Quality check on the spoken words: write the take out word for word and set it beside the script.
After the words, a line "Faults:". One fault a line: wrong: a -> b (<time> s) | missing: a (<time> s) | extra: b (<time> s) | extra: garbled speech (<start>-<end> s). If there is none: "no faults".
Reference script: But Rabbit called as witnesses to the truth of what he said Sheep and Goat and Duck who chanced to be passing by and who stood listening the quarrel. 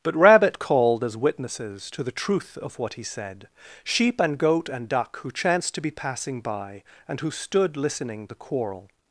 But Rabbit called as witnesses to the truth of what he said Sheep and Goat and Duck who chanced to be passing by and who stood listening the quarrel.
Faults:
no faults